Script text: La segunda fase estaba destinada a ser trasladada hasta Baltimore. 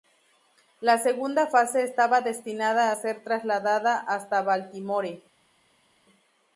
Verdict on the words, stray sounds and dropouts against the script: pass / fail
pass